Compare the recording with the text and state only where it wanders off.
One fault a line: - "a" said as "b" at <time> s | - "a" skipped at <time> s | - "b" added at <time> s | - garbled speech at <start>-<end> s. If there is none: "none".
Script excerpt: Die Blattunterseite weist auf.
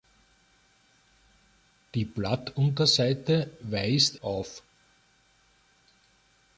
none